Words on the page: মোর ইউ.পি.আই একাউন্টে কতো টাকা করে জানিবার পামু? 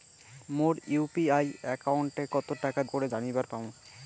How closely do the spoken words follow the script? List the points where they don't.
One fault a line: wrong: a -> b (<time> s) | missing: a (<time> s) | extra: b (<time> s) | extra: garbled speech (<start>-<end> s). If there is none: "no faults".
no faults